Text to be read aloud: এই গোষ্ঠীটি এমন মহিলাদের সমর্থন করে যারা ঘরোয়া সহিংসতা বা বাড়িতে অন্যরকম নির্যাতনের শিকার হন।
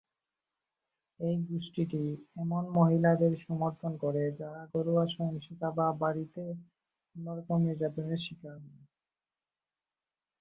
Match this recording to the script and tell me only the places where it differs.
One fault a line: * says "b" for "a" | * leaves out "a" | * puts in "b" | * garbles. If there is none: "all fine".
all fine